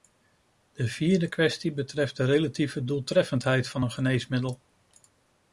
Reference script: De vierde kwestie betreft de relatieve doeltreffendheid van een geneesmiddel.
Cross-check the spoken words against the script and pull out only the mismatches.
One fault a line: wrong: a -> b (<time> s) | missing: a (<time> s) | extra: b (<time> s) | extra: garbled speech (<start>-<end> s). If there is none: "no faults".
no faults